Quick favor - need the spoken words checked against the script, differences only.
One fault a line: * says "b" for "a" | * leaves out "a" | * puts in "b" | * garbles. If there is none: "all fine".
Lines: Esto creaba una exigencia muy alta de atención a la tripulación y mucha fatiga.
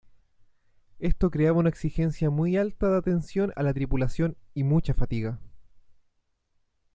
all fine